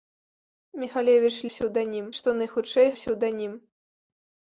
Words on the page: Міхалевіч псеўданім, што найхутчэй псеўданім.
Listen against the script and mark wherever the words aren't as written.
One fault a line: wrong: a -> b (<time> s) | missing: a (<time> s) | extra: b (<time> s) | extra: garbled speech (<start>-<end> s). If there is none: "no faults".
no faults